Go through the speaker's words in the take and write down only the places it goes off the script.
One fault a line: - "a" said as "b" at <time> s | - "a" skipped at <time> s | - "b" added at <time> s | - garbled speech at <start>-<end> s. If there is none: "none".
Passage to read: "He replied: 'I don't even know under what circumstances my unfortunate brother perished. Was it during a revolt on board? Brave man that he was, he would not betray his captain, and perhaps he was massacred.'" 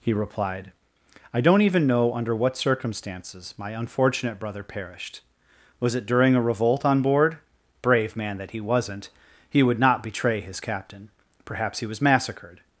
- "was" said as "wasn't" at 8.6 s
- "and" skipped at 11.1 s